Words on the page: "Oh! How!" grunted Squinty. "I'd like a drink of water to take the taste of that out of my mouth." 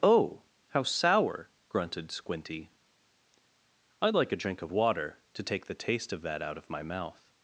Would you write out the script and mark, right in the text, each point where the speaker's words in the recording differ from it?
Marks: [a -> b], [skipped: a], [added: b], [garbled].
"Oh! How!" [added: sour] grunted Squinty. "I'd like a drink of water to take the taste of that out of my mouth."